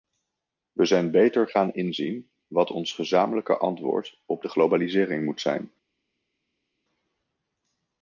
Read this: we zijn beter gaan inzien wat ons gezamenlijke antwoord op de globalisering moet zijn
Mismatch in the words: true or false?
false